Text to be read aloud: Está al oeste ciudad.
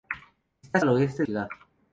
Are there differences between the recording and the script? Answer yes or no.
no